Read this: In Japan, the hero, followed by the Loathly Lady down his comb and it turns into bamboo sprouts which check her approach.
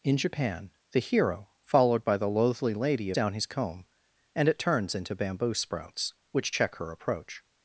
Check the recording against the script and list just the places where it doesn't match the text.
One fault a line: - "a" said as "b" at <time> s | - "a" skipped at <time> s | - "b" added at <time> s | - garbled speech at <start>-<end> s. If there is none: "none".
none